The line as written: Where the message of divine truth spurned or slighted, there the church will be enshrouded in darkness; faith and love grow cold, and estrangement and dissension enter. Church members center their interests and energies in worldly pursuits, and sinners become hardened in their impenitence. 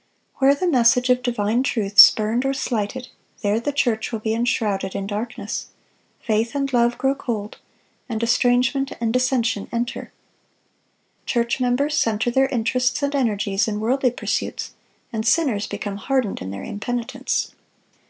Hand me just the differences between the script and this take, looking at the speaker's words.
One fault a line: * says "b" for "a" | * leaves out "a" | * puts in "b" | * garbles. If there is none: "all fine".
all fine